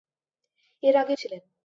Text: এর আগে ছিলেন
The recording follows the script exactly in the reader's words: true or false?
true